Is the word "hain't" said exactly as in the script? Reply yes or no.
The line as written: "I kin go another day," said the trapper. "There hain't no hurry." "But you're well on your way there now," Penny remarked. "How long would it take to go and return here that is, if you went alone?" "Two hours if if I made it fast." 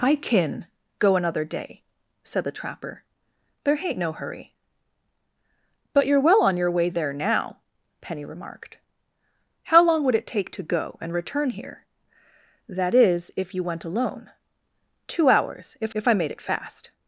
yes